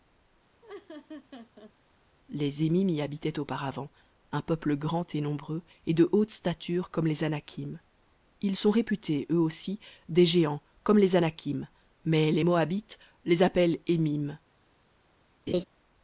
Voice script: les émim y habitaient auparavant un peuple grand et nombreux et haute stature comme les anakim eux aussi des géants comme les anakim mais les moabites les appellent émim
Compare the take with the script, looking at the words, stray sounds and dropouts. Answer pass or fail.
fail